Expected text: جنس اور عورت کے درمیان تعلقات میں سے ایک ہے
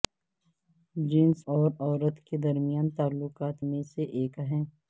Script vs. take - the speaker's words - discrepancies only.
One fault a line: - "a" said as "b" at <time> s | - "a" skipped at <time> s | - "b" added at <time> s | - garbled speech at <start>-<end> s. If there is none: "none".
none